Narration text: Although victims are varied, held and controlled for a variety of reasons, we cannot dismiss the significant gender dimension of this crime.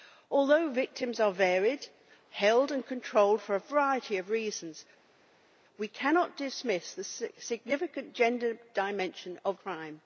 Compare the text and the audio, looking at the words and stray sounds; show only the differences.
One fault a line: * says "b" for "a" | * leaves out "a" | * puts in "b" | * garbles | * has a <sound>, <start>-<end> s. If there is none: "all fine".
* leaves out "this"